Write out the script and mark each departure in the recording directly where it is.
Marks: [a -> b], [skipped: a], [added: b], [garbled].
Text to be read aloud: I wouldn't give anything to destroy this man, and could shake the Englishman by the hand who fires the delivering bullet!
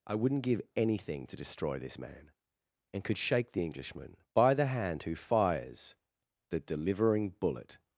I wouldn't give anything to destroy this man, and could shake the Englishman by the hand who fires the delivering bullet!